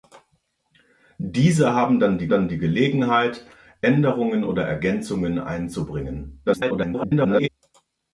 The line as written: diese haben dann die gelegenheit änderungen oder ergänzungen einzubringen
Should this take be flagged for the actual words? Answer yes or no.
yes